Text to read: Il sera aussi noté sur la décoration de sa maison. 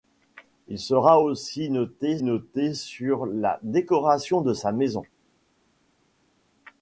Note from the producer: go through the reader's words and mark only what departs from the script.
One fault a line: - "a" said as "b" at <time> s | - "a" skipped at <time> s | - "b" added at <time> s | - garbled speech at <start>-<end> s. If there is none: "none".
- "noté" added at 2.2 s